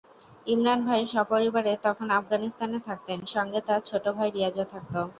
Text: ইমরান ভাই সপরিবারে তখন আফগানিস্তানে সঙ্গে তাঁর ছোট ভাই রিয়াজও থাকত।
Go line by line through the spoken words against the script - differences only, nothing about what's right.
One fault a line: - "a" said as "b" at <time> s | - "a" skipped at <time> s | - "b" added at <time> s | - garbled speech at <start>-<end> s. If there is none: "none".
- "থাকতেন" added at 2.9 s